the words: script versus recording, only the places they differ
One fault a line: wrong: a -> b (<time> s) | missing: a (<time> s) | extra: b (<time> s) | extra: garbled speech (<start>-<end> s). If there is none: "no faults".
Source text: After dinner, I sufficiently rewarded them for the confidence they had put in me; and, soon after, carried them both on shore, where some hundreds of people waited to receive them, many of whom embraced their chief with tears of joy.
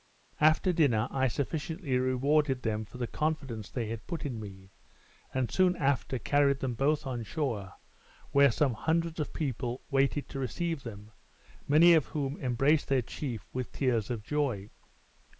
no faults